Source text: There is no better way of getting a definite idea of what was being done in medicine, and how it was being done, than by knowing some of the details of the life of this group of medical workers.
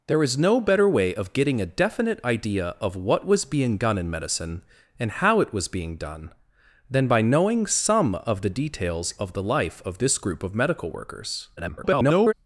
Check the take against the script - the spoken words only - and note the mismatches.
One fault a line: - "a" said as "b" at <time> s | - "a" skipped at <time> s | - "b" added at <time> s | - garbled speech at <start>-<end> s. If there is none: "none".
- garbled speech at 11.6-12.3 s